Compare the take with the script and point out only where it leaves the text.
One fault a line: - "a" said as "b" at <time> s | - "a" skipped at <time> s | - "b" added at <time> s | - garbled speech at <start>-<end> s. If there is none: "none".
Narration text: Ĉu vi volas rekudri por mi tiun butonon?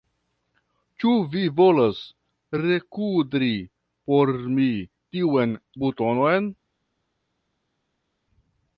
none